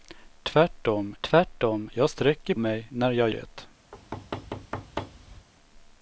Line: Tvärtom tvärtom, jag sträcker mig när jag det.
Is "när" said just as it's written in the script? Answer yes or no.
yes